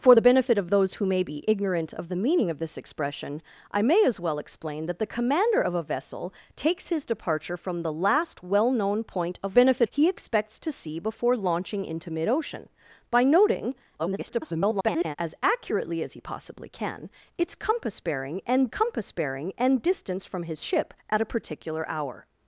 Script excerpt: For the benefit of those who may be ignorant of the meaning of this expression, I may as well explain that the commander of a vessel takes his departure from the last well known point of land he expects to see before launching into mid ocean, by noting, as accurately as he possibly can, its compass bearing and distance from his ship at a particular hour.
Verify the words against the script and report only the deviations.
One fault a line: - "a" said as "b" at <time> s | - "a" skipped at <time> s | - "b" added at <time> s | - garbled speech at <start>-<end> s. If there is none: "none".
- "land" said as "benefit" at 9.5 s
- garbled speech at 14.0-15.2 s
- "compass bearing and" added at 18.7 s